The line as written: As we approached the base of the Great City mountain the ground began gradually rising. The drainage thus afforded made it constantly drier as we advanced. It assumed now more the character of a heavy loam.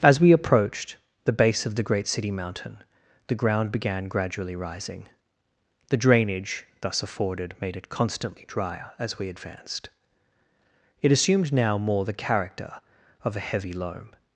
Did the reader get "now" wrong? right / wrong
right